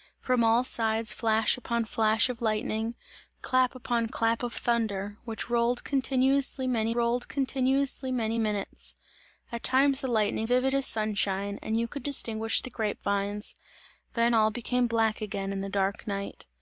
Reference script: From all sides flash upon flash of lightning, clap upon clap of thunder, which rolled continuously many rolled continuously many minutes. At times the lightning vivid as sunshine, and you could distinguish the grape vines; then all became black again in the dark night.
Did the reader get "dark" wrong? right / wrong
right